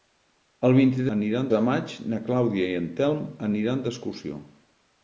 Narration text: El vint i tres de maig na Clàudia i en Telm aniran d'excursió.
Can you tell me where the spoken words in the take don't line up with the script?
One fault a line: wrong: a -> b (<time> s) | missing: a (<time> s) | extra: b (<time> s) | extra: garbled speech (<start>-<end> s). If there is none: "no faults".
wrong: tres -> aniran (1.2 s)